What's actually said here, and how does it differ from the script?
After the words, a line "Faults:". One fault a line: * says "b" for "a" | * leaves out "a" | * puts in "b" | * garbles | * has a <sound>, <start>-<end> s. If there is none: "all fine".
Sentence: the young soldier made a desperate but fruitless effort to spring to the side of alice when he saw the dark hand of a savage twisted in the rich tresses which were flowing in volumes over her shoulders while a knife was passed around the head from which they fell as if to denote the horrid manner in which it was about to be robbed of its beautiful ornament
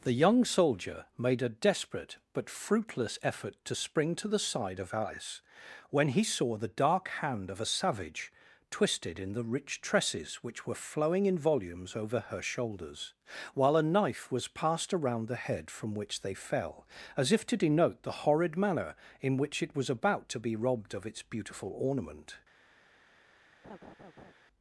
the young soldier made a desperate but fruitless effort to spring to the side of alice when he saw the dark hand of a savage twisted in the rich tresses which were flowing in volumes over her shoulders while a knife was passed around the head from which they fell as if to denote the horrid manner in which it was about to be robbed of its beautiful ornament
Faults:
* has a laugh, 23.6-24.3 s